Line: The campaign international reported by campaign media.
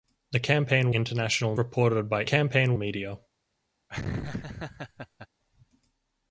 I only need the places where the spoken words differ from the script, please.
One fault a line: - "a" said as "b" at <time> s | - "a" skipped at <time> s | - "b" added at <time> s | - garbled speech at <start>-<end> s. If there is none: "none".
none